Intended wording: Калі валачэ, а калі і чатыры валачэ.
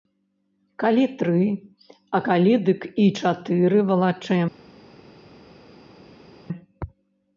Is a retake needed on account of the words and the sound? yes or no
yes